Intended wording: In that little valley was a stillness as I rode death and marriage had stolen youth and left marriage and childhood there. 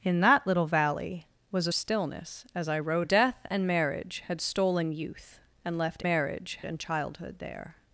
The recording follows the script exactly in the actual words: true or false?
true